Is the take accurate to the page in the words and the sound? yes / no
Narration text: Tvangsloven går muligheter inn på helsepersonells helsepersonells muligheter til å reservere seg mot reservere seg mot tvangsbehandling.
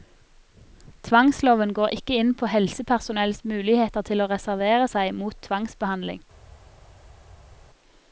no